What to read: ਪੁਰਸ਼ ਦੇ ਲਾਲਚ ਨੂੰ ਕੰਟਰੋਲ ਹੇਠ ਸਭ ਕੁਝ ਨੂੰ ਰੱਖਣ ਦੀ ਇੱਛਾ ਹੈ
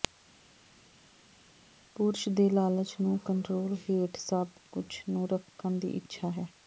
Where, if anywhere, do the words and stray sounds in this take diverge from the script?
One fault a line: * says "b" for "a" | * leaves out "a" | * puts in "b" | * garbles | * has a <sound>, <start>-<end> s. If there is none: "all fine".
all fine